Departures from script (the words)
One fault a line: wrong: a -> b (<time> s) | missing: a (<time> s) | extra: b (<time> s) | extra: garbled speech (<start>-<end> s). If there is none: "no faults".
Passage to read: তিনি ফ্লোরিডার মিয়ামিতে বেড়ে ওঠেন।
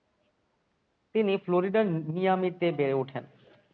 no faults